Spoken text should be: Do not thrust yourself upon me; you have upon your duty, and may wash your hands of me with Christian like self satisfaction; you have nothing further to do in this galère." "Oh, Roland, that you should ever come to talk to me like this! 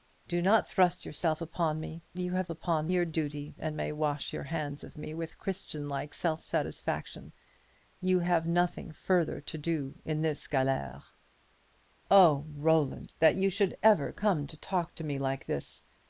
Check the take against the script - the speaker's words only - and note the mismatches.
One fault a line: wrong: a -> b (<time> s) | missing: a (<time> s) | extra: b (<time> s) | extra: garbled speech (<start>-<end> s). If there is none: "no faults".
no faults